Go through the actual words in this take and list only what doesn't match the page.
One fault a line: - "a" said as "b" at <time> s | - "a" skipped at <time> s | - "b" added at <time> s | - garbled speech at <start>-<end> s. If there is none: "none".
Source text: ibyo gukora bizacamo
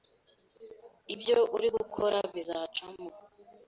- "uri" added at 1.6 s